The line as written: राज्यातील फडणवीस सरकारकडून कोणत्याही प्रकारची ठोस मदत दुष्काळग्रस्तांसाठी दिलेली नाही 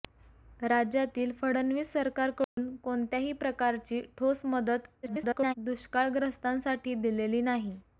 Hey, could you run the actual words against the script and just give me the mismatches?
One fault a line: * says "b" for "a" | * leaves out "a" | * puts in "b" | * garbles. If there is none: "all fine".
* garbles